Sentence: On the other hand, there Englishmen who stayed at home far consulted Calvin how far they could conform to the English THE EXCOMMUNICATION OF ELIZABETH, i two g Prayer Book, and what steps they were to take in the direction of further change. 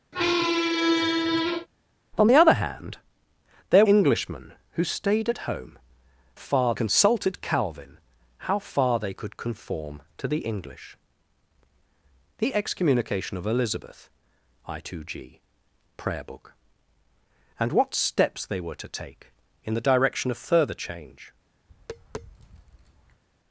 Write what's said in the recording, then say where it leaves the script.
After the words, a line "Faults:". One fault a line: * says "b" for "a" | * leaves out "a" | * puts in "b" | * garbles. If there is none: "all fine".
On the other hand, there Englishmen who stayed at home far consulted Calvin how far they could conform to the English THE EXCOMMUNICATION OF ELIZABETH, i two g Prayer Book, and what steps they were to take in the direction of further change.
Faults:
all fine